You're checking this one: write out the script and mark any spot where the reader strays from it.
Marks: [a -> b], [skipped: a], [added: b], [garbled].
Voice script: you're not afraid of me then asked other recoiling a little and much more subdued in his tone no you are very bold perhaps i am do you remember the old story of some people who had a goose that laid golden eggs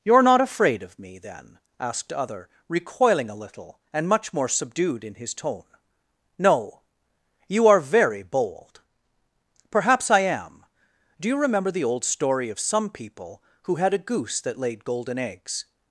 you're not afraid of me then asked other recoiling a little and much more subdued in his tone no you are very bold perhaps i am do you remember the old story of some people who had a goose that laid golden eggs